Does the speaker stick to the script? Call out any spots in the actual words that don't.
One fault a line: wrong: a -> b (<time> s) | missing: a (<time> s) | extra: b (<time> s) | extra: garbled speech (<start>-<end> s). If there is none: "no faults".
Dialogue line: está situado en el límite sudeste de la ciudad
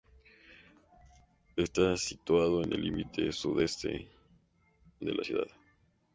no faults